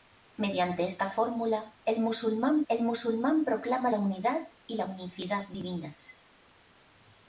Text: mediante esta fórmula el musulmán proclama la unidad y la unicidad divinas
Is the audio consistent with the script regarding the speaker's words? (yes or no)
no